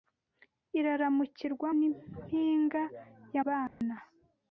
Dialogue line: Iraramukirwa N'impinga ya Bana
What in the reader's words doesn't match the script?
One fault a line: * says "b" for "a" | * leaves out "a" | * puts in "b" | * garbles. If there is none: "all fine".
all fine